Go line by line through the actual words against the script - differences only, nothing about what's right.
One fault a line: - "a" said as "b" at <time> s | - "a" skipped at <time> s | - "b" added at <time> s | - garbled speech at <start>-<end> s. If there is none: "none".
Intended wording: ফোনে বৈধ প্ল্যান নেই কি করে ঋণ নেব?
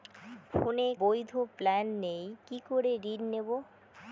none